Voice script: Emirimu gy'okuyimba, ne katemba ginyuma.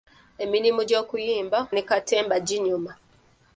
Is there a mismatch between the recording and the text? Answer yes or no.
no